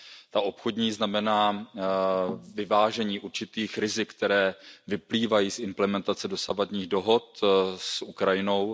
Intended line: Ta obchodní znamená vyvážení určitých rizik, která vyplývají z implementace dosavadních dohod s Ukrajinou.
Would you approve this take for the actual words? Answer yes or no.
yes